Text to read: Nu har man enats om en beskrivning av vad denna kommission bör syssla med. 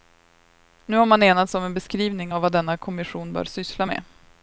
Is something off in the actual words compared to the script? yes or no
no